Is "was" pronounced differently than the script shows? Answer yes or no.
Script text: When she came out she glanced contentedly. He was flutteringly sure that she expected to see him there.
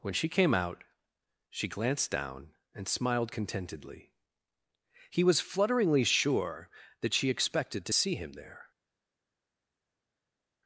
no